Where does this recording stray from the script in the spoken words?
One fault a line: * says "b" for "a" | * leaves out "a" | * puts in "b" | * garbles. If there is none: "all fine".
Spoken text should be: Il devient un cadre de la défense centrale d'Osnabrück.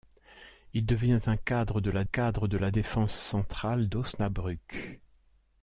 * puts in "cadre de la"